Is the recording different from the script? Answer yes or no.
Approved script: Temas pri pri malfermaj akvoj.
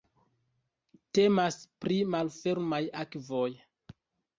yes